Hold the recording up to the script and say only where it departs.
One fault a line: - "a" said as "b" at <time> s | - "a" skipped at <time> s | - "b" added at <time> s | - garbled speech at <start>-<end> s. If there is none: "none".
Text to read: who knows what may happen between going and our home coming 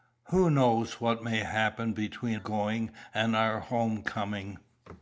none